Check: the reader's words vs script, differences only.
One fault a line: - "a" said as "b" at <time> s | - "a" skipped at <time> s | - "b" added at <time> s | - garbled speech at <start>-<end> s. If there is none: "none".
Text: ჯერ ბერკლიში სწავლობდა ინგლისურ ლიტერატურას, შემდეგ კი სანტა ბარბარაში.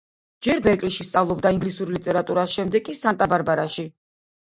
none